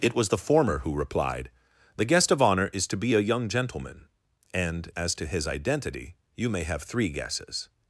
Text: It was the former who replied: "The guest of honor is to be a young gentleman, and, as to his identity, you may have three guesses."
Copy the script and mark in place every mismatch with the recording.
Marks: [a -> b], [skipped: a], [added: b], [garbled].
It was the former who replied: "The guest of honor is to be a young gentleman, and, as to his identity, you may have three guesses."